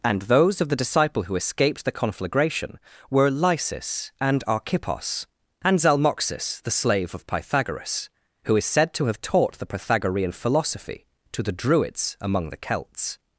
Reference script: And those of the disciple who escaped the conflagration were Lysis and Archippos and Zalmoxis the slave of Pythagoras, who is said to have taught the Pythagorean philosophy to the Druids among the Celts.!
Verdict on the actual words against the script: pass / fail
pass